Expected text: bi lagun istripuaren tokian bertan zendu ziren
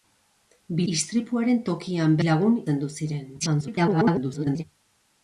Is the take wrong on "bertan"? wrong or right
wrong